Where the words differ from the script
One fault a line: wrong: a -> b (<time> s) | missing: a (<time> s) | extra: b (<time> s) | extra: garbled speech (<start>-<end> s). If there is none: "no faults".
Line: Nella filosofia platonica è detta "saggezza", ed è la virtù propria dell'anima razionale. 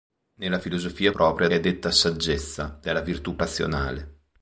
wrong: platonica -> propria (1.1 s)
missing: ed (2.8 s)
missing: propria dell'anima (3.4 s)